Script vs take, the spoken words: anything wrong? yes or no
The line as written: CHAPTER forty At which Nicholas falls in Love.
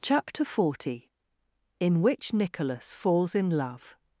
yes